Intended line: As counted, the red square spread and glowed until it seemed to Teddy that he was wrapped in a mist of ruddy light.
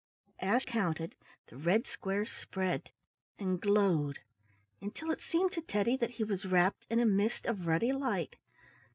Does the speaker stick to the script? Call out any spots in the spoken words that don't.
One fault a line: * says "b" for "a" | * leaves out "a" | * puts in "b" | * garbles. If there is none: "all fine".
all fine